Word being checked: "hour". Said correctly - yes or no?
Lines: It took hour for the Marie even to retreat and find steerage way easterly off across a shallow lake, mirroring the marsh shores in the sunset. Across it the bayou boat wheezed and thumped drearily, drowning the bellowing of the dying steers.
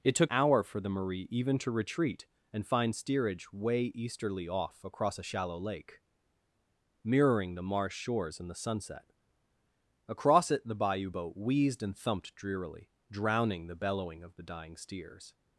yes